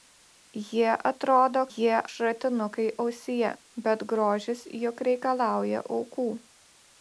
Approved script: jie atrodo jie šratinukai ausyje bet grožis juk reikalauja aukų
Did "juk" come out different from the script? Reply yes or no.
no